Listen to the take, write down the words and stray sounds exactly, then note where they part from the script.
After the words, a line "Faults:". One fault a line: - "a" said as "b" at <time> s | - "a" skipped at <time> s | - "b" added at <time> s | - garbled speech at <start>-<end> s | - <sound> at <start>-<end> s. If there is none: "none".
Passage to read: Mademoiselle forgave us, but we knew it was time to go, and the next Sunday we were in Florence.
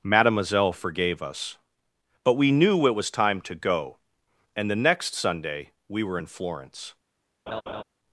Mademoiselle forgave us, but we knew it was time to go, and the next Sunday we were in Florence.
Faults:
- laugh at 7.5-7.8 s